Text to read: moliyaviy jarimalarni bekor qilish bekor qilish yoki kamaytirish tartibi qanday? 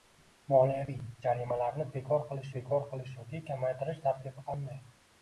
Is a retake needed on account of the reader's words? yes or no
no